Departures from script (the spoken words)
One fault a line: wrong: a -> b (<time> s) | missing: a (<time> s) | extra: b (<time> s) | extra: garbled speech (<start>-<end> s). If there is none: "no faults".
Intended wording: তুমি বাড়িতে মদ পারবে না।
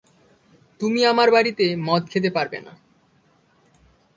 extra: আমার (1.1 s)
extra: খেতে (2.1 s)